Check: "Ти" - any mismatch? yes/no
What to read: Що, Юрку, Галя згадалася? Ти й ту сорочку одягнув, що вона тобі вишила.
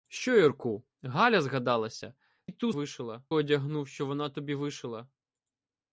yes